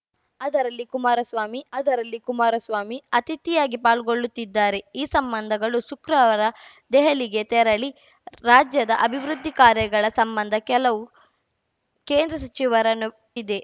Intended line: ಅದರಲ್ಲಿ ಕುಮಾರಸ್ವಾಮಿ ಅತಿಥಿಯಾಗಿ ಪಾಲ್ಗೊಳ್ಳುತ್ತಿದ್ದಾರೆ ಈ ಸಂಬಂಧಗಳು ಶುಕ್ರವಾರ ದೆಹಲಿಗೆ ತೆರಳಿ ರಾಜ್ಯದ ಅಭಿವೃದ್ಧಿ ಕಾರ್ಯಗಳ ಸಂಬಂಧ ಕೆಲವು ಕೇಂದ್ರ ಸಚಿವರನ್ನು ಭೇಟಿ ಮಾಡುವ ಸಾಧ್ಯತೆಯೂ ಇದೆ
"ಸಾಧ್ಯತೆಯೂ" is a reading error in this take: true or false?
true